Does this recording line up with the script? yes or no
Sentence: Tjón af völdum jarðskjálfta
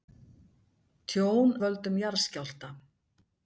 no